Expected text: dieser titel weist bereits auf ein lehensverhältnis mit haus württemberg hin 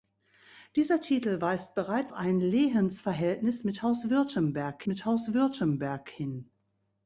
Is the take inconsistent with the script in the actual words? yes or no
yes